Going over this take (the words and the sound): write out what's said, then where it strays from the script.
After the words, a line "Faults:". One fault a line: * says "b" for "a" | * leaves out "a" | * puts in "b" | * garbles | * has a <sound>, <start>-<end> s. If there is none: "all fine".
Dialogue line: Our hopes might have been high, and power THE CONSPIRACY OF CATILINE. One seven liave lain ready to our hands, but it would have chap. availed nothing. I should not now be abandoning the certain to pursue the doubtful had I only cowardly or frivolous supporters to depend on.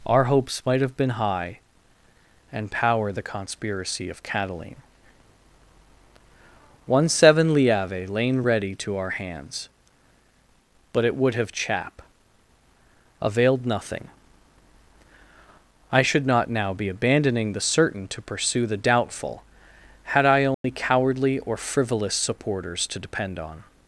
Our hopes might have been high, and power THE CONSPIRACY OF CATILINE. One seven liave lain ready to our hands, but it would have chap. availed nothing. I should not now be abandoning the certain to pursue the doubtful had I only cowardly or frivolous supporters to depend on.
Faults:
* has a dropout, 20.5-20.6 s